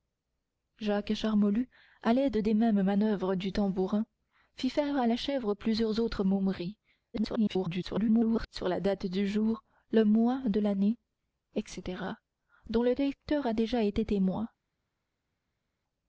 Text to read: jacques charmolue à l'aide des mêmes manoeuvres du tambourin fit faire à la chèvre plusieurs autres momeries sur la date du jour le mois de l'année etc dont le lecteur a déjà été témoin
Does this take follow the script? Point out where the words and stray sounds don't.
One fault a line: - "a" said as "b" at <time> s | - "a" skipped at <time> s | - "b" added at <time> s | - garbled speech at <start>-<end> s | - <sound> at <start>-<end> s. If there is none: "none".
- garbled speech at 7.1-8.5 s